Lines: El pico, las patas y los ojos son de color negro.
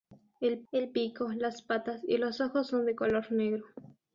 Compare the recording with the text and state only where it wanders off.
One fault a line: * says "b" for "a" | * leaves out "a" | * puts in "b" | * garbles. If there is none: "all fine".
* puts in "el"